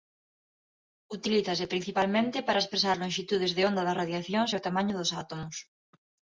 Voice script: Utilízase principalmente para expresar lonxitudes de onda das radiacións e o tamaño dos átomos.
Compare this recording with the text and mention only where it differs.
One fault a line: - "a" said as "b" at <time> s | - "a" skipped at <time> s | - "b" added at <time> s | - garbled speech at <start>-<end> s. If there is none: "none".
none